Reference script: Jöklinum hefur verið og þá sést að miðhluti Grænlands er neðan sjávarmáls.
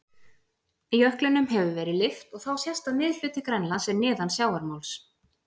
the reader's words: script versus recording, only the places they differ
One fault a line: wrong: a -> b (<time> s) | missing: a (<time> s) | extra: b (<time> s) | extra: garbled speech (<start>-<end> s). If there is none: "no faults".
extra: lyft (2.0 s)